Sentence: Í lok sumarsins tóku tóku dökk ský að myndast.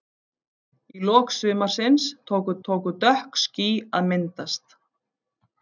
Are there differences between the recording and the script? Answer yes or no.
no